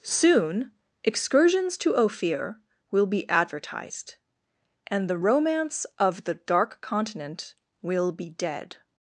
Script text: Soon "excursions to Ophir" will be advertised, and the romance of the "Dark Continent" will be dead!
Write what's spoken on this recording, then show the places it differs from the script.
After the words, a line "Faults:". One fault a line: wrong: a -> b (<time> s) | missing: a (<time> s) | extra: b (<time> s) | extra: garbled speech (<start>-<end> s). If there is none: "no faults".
Soon "excursions to Ophir" will be advertised, and the romance of the "Dark Continent" will be dead!
Faults:
no faults